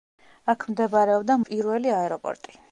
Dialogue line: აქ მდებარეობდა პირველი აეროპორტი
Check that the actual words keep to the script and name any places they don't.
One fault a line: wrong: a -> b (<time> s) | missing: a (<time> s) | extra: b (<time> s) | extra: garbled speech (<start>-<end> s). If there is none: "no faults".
no faults